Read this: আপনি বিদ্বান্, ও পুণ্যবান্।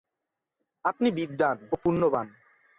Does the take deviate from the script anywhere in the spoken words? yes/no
no